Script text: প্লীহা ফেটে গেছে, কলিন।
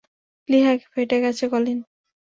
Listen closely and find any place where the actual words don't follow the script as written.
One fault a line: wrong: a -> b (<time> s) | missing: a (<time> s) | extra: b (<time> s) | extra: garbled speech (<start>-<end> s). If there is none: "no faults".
no faults